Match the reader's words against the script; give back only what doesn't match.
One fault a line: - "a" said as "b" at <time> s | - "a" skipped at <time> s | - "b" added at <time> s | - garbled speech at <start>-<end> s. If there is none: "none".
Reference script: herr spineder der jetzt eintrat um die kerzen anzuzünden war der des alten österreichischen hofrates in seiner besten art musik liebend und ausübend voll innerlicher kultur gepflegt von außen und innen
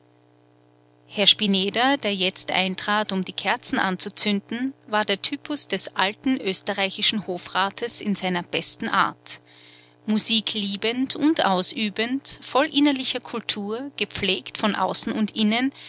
- "typus" added at 5.2 s